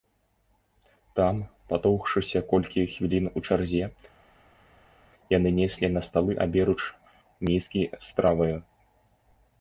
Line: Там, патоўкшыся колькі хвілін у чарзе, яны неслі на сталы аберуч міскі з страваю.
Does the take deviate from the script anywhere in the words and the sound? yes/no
no